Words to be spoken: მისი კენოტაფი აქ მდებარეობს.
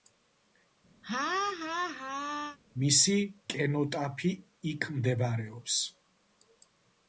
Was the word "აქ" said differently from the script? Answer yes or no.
yes